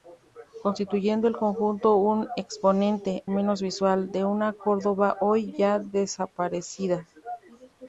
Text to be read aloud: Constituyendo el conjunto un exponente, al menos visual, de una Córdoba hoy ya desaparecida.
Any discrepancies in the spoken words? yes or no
yes